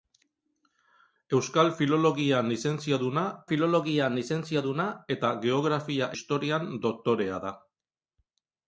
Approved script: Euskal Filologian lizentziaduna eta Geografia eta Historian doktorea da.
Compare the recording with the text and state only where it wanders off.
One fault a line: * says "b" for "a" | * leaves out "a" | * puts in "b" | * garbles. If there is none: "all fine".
* puts in "Filologian lizentziaduna"
* leaves out "eta"